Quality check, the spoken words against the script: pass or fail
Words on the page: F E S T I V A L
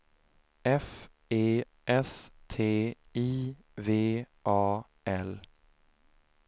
pass